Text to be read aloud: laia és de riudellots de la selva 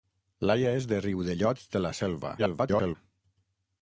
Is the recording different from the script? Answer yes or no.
yes